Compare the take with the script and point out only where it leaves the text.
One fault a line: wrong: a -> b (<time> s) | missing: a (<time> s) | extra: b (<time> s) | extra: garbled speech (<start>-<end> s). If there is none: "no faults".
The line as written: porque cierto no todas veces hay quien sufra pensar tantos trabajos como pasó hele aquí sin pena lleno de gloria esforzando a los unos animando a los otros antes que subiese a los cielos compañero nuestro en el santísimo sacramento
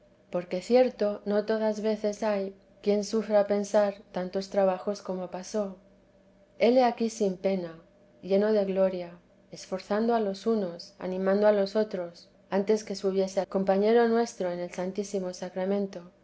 missing: los cielos (13.4 s)